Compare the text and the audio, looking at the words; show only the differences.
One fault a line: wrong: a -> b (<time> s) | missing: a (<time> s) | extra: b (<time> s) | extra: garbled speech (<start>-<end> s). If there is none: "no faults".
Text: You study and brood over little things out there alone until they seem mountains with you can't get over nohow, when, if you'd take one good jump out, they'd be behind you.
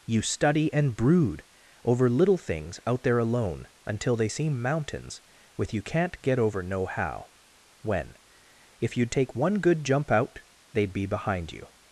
no faults